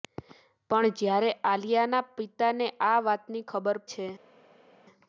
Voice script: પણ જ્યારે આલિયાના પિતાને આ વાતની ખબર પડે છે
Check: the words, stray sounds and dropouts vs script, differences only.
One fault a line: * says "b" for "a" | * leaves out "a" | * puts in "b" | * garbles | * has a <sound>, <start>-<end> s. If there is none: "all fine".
* leaves out "પડે"